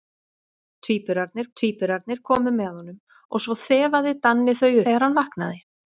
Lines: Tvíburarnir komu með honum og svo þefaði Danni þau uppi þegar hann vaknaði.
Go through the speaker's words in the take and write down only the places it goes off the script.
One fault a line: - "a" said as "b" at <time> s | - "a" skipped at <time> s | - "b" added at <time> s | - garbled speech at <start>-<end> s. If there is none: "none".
- "tvíburarnir" added at 1.6 s
- "uppi" skipped at 4.7 s